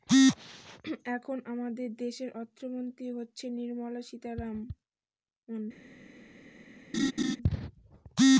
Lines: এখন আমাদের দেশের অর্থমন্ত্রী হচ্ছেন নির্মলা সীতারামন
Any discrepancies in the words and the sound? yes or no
yes